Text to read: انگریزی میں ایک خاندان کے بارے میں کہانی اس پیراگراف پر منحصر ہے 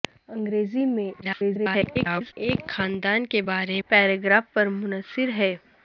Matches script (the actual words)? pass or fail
fail